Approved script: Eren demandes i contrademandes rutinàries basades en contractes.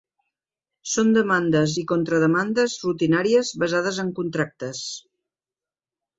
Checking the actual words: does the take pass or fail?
fail